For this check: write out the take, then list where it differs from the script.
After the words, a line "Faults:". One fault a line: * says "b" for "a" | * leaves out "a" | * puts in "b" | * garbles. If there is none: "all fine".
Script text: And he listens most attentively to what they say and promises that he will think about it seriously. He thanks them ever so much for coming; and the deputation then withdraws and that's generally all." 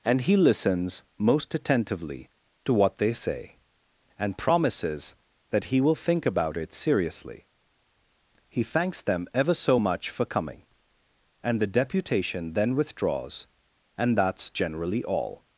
And he listens most attentively to what they say and promises that he will think about it seriously. He thanks them ever so much for coming; and the deputation then withdraws and that's generally all."
Faults:
all fine